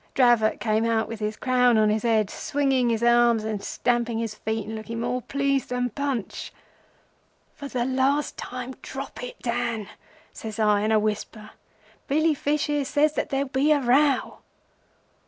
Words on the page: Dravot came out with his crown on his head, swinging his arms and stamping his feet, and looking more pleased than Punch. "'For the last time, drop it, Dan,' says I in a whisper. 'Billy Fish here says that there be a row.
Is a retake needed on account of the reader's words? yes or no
no